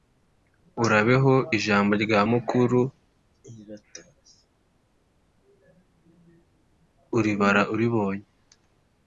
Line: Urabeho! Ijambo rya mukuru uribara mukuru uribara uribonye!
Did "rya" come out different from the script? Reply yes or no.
no